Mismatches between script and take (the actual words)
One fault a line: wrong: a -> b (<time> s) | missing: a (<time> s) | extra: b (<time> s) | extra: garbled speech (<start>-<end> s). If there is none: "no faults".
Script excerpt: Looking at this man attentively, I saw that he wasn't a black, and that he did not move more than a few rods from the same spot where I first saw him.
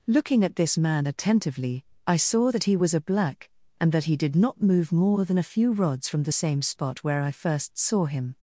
wrong: wasn't -> was (2.8 s)